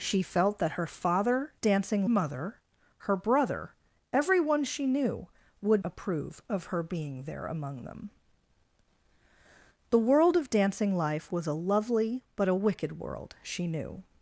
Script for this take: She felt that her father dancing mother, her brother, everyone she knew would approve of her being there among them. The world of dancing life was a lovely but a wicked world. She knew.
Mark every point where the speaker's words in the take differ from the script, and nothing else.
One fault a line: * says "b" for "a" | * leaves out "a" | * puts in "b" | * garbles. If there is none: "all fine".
all fine